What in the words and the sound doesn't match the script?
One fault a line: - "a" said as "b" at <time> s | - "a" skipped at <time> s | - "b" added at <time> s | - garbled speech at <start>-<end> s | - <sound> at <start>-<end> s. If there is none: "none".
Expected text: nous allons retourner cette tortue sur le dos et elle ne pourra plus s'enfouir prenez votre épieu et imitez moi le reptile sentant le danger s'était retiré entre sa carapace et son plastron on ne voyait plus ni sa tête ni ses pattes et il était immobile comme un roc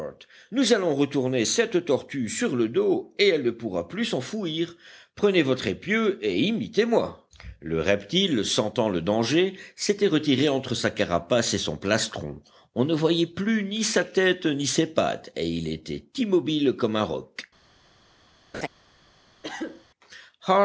- laugh at 18.5-18.7 s
- cough at 19.4-19.8 s